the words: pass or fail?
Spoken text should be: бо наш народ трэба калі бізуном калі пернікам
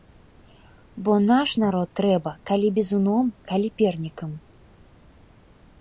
pass